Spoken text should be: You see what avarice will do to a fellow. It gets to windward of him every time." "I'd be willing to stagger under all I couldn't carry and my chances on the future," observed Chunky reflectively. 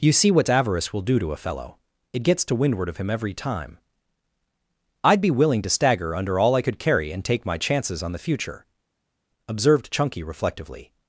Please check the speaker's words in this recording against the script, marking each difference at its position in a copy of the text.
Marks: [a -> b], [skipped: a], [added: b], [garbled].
You see what avarice will do to a fellow. It gets to windward of him every time." "I'd be willing to stagger under all I [couldn't -> could] carry and [added: take] my chances on the future," observed Chunky reflectively.